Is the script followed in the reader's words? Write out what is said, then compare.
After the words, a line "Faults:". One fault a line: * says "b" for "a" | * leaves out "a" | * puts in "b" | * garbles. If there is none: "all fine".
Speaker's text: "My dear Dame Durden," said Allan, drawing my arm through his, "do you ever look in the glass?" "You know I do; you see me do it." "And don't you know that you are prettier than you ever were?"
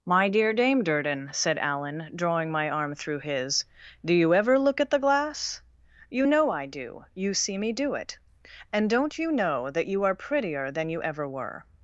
"My dear Dame Durden," said Allan, drawing my arm through his, "do you ever look at the glass?" "You know I do; you see me do it." "And don't you know that you are prettier than you ever were?"
Faults:
* says "at" for "in"